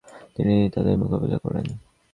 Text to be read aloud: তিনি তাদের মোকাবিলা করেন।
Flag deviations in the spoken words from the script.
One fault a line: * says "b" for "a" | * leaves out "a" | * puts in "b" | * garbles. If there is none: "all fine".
all fine